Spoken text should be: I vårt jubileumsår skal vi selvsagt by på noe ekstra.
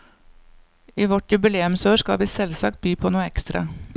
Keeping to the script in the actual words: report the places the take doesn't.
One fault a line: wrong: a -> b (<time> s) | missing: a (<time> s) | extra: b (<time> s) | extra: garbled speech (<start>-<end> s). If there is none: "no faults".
no faults